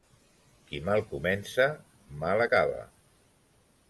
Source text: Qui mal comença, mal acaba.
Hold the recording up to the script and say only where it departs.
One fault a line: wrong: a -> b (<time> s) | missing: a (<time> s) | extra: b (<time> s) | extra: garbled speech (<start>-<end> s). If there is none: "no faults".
no faults